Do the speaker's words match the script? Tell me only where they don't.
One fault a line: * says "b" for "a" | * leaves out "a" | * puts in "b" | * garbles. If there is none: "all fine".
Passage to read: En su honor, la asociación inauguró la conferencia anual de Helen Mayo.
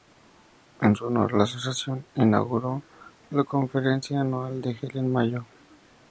all fine